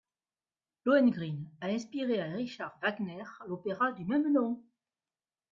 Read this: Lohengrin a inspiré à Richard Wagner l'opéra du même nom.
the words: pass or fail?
pass